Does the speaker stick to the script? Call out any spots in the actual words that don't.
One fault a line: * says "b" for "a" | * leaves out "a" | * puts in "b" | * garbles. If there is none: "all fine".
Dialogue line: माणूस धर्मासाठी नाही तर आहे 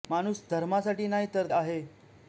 all fine